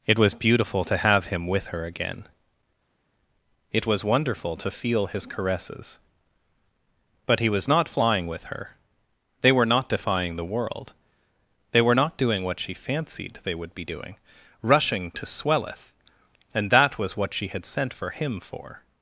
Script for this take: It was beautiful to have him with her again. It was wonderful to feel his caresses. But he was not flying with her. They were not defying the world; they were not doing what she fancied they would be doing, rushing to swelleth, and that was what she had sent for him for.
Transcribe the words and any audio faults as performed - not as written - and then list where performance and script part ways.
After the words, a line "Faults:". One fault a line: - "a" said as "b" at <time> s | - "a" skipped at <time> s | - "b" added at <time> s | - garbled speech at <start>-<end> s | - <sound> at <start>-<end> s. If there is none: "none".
It was beautiful to have him with her again. It was wonderful to feel his caresses. But he was not flying with her. They were not defying the world; they were not doing what she fancied they would be doing, rushing to swelleth, and that was what she had sent for him for.
Faults:
none